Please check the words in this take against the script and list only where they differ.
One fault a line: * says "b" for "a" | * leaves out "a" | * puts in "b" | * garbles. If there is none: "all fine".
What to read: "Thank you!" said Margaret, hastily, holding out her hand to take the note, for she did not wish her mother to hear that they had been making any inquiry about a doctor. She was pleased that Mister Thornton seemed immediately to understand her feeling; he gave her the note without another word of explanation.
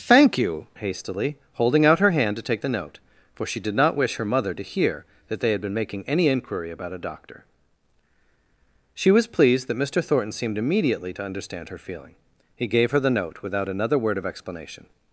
* leaves out "said Margaret"